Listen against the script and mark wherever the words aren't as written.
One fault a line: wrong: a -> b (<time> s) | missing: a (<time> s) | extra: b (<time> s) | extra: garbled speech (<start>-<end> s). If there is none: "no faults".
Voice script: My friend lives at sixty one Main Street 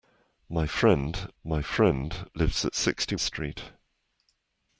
extra: my friend (1.4 s)
missing: one Main (3.2 s)